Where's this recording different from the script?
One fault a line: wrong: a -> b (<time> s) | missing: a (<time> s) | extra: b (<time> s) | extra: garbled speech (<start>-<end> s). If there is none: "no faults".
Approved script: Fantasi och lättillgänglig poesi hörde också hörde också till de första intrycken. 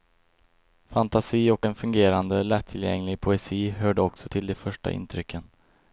extra: en fungerande (1.6 s)
missing: hörde också (4.3 s)